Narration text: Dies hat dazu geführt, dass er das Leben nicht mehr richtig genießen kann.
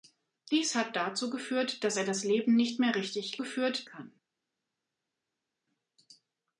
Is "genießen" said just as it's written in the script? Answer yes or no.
no